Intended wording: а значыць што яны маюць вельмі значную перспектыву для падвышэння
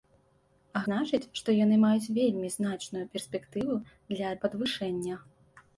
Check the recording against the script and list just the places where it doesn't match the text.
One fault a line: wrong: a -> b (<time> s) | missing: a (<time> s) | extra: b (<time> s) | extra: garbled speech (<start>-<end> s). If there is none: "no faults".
no faults